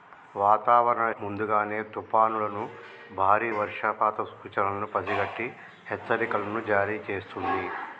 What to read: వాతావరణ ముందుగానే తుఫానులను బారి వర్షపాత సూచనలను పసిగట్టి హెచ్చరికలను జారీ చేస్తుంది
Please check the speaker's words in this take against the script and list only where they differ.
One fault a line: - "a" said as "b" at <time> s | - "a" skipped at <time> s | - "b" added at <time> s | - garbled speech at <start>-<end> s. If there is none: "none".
none